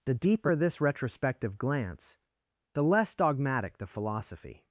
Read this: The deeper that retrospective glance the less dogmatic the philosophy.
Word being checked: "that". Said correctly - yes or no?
no